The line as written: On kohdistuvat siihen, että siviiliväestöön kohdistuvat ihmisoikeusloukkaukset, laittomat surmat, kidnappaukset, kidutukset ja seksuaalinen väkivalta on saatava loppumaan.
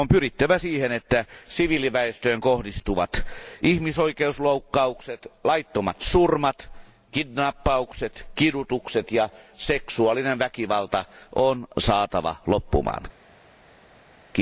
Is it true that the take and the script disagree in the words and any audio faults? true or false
true